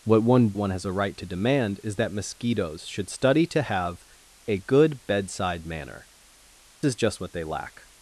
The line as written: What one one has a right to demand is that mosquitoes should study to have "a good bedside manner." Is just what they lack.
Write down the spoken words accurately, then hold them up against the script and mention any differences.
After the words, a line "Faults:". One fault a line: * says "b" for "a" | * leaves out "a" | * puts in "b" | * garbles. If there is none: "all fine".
What one one has a right to demand is that mosquitoes should study to have "a good bedside manner." Is just what they lack.
Faults:
all fine